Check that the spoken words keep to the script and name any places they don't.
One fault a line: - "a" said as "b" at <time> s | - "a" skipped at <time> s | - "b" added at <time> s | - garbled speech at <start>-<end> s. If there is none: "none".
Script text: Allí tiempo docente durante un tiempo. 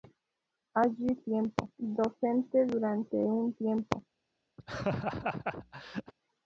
none